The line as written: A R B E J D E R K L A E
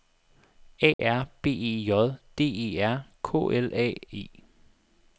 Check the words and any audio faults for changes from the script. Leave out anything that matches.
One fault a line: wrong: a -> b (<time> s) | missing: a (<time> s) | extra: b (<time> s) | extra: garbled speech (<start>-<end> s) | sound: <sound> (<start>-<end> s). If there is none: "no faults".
sound: dropout (0.9-1.0 s)